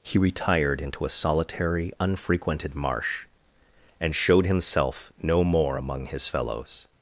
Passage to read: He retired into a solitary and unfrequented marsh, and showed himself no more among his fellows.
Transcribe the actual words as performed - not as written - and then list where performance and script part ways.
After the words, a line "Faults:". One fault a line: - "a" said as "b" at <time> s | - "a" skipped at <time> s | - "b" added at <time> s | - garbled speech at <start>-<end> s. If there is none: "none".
He retired into a solitary unfrequented marsh, and showed himself no more among his fellows.
Faults:
- "and" skipped at 1.9 s